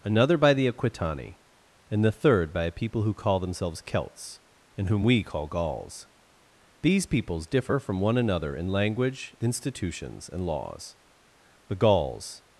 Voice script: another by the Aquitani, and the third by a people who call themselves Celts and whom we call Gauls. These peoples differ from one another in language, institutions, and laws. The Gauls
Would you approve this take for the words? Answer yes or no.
yes